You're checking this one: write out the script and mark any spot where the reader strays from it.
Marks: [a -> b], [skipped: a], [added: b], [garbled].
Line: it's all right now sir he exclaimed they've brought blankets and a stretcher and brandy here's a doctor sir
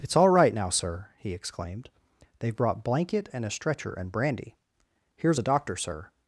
it's all right now sir he exclaimed they've brought [blankets -> blanket] and a stretcher and brandy here's a doctor sir